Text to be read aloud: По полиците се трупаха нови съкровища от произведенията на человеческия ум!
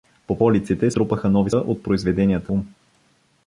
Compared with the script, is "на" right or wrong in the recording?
wrong